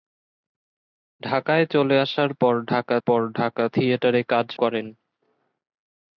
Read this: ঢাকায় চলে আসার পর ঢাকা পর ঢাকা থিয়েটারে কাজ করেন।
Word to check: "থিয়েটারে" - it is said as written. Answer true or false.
true